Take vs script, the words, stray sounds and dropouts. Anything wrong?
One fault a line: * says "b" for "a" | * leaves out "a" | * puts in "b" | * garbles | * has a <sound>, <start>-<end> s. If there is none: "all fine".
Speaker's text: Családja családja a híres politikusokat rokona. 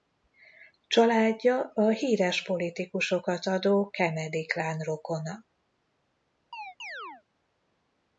* leaves out "családja"
* puts in "adó Kennedy klán"
* has a chirp, 6.5-7.2 s